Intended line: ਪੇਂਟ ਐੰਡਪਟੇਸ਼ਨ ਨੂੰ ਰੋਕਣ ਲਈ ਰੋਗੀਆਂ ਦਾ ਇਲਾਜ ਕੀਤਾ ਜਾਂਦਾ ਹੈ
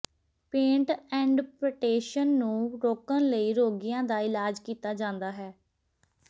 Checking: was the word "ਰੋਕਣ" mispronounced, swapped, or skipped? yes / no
no